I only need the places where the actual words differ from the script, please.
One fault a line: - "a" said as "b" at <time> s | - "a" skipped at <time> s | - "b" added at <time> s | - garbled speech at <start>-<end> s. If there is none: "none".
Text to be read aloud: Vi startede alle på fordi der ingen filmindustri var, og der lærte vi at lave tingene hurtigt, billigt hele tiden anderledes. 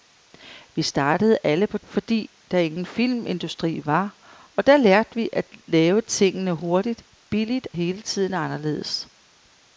none